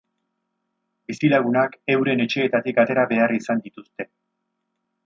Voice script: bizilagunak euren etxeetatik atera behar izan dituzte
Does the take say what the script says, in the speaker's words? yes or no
yes